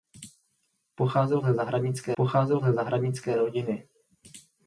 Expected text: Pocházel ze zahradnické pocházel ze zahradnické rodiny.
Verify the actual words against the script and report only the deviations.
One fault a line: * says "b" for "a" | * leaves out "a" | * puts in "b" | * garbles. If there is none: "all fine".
all fine